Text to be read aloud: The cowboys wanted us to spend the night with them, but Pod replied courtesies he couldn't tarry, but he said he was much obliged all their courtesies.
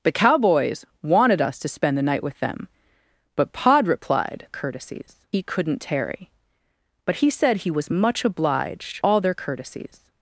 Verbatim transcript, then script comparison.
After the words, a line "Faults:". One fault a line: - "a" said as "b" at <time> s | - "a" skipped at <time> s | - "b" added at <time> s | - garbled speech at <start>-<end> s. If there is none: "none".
The cowboys wanted us to spend the night with them, but Pod replied courtesies he couldn't tarry, but he said he was much obliged all their courtesies.
Faults:
none